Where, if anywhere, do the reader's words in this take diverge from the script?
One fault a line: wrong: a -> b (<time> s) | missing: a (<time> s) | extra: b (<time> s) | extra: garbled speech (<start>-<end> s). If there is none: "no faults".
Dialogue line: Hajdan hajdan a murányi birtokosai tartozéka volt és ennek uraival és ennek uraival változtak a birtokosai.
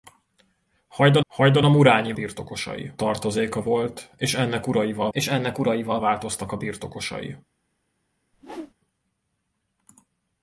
no faults